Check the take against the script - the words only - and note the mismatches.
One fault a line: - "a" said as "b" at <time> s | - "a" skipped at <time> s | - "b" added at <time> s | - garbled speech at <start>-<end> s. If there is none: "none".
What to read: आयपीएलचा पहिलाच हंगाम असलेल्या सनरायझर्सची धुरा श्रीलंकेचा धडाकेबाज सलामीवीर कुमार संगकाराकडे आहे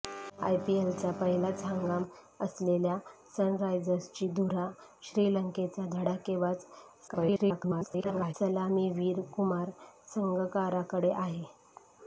- garbled speech at 7.1-8.3 s